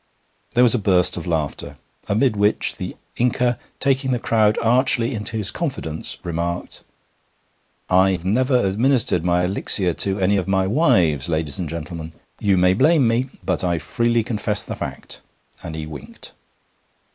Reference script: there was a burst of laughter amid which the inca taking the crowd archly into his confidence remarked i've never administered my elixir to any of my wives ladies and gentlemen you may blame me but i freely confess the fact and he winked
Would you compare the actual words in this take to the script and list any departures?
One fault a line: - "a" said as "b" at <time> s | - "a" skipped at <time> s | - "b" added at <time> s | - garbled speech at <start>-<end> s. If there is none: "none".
none